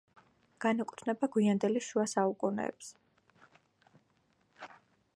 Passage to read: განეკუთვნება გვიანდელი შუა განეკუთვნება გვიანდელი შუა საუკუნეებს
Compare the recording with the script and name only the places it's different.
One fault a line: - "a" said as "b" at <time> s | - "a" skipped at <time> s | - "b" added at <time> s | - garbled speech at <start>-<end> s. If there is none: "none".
- "განეკუთვნება გვიანდელი შუა" skipped at 2.1 s